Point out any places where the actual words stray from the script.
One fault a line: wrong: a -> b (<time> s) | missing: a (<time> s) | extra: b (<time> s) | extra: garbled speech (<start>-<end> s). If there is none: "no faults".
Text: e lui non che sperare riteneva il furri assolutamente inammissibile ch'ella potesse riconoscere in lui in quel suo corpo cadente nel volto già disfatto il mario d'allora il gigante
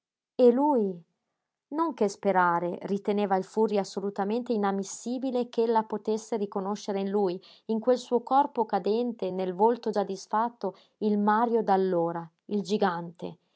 no faults